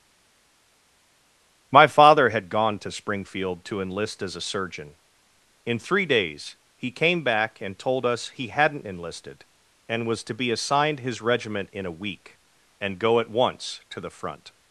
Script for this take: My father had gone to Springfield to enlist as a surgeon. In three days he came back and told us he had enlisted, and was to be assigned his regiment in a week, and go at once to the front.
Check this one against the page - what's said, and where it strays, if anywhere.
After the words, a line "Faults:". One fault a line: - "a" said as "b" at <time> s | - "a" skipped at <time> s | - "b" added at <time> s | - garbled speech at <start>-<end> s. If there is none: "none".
My father had gone to Springfield to enlist as a surgeon. In three days he came back and told us he hadn't enlisted, and was to be assigned his regiment in a week, and go at once to the front.
Faults:
- "had" said as "hadn't" at 8.5 s